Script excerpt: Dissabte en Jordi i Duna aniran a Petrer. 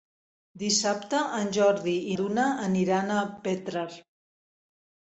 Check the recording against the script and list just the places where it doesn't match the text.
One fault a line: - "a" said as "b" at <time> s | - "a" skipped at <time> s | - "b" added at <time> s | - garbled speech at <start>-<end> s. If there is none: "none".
none